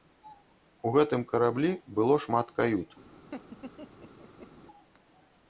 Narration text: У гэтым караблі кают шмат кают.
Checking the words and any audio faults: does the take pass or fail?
fail